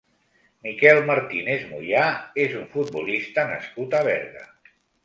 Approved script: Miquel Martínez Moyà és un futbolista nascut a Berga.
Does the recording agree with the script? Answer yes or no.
yes